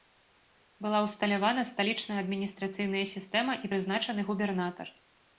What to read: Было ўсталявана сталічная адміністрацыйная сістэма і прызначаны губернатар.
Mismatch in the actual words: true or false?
true